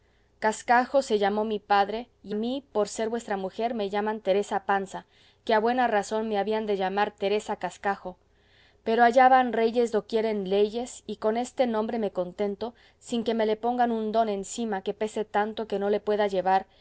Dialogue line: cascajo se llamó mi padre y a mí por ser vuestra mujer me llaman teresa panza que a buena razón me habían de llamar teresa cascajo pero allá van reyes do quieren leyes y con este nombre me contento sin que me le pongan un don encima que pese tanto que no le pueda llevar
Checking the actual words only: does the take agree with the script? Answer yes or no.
no